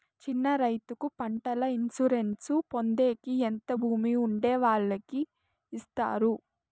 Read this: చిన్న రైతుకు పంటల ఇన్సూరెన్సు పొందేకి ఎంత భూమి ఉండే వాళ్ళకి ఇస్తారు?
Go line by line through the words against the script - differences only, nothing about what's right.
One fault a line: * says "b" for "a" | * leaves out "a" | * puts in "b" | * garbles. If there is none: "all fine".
all fine